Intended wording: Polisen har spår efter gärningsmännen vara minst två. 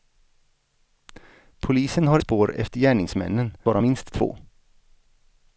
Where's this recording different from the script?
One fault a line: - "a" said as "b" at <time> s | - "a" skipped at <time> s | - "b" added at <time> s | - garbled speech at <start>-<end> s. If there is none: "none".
none